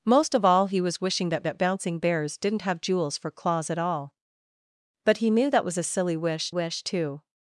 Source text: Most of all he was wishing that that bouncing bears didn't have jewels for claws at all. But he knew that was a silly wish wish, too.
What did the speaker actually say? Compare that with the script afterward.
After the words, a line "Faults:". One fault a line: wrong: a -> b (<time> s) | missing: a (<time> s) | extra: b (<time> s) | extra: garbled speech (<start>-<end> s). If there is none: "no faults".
Most of all he was wishing that that bouncing bears didn't have jewels for claws at all. But he knew that was a silly wish wish, too.
Faults:
no faults